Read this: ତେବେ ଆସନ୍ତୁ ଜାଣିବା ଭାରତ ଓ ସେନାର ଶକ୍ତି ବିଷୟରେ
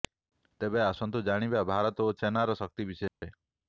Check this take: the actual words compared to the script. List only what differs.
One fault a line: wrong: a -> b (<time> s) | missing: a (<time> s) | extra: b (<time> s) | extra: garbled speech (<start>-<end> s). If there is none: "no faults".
no faults